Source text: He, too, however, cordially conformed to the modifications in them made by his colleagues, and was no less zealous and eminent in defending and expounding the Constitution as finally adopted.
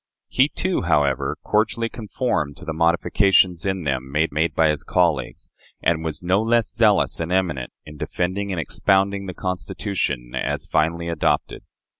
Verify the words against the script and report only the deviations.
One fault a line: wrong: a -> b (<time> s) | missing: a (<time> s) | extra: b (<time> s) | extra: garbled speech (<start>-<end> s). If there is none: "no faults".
extra: made (4.3 s)